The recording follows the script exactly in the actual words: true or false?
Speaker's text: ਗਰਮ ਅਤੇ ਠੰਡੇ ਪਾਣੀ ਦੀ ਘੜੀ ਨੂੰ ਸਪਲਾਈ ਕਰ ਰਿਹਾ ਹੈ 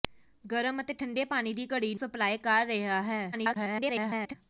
false